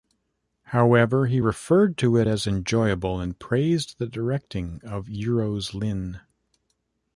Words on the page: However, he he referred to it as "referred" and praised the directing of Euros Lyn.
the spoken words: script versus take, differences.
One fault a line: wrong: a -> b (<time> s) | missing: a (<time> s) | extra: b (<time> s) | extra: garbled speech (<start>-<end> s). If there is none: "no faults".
missing: he (1.4 s)
wrong: referred -> enjoyable (2.5 s)